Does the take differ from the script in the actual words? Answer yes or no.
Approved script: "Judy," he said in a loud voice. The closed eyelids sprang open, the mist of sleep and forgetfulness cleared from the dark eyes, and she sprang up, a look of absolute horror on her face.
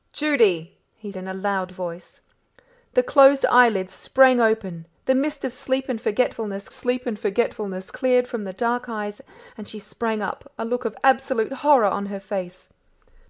yes